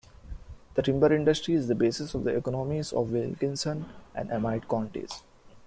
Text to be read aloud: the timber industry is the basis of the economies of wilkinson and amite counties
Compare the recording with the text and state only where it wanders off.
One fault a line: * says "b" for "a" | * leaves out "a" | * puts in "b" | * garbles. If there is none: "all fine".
all fine